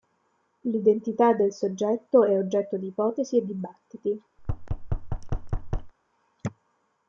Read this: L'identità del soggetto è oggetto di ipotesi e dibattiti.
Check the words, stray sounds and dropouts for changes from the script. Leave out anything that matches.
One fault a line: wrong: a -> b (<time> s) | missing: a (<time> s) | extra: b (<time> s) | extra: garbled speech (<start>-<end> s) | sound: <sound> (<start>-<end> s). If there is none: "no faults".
sound: thud (4.4-5.9 s)